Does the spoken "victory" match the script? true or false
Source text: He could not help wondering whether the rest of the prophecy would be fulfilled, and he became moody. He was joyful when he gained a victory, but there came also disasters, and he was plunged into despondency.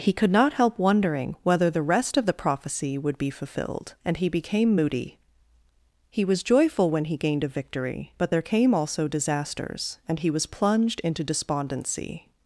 true